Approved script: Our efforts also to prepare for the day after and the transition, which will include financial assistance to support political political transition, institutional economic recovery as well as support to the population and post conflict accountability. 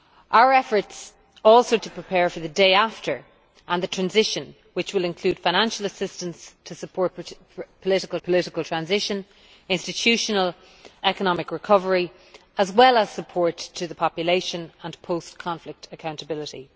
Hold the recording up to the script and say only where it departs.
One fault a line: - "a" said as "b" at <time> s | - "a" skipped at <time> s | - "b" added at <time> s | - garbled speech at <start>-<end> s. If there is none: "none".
none